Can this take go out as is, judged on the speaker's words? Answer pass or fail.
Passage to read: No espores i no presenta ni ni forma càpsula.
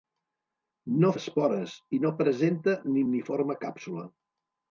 pass